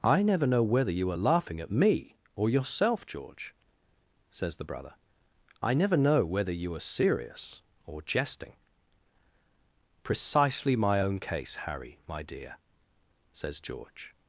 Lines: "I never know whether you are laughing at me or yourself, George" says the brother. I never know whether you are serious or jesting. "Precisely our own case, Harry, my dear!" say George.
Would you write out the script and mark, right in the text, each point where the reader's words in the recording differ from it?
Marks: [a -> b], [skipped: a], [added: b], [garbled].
"I never know whether you are laughing at me or yourself, George" says the brother. I never know whether you are serious or jesting. "Precisely [our -> my] own case, Harry, my dear!" [say -> says] George.